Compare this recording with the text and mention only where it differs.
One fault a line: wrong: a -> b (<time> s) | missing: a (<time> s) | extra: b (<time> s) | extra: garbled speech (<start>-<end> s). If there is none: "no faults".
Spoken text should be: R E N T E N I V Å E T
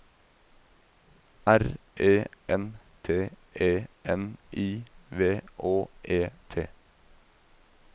no faults